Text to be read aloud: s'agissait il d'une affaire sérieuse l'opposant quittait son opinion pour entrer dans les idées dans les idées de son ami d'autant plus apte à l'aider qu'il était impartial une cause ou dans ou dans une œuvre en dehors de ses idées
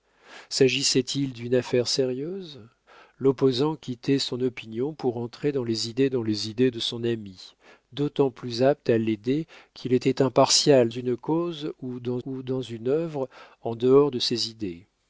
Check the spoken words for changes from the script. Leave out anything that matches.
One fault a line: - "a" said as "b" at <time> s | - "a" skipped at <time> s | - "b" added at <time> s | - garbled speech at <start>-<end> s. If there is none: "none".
none